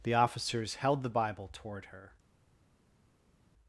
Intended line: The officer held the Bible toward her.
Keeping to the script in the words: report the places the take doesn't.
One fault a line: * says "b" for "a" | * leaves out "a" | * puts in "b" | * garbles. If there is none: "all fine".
* says "officers" for "officer"